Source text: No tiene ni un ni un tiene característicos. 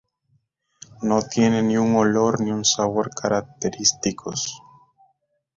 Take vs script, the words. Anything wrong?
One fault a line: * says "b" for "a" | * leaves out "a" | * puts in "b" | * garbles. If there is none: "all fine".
* puts in "olor"
* says "sabor" for "tiene"